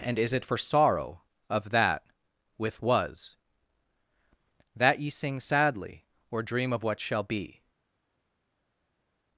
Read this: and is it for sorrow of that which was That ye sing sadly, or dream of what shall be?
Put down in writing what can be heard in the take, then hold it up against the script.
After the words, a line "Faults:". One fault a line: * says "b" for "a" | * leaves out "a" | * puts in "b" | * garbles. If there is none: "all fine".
and is it for sorrow of that with was That ye sing sadly, or dream of what shall be?
Faults:
* says "with" for "which"